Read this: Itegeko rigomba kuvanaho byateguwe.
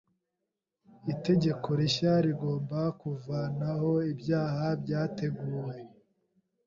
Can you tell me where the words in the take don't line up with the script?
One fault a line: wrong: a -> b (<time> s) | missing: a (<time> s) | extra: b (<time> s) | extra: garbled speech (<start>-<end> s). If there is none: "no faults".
extra: rishya (1.8 s)
extra: ibyaha (4.1 s)